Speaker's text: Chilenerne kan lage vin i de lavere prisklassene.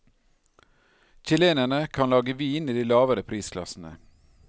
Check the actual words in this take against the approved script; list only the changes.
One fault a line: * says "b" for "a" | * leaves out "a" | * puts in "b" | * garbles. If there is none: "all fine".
all fine